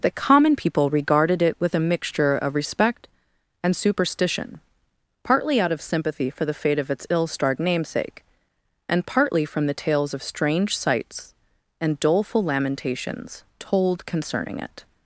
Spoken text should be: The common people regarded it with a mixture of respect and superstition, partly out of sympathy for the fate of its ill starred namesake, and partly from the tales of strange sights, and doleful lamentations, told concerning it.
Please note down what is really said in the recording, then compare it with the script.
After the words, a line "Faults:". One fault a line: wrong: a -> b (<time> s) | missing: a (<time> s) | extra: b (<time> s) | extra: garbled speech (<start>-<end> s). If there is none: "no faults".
The common people regarded it with a mixture of respect and superstition, partly out of sympathy for the fate of its ill starred namesake, and partly from the tales of strange sights, and doleful lamentations, told concerning it.
Faults:
no faults